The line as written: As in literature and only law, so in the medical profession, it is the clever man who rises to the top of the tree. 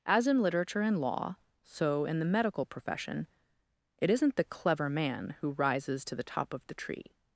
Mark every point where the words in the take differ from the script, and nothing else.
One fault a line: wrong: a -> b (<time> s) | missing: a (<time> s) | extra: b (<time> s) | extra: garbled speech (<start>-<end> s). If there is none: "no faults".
missing: only (1.0 s)
wrong: is -> isn't (4.1 s)